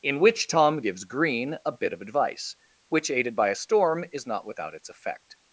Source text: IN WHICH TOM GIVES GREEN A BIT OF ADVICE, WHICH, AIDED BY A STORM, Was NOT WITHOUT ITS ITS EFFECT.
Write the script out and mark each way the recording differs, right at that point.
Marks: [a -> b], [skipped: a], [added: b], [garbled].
IN WHICH TOM GIVES GREEN A BIT OF ADVICE, WHICH, AIDED BY A STORM, [Was -> IS] NOT WITHOUT ITS [skipped: ITS] EFFECT.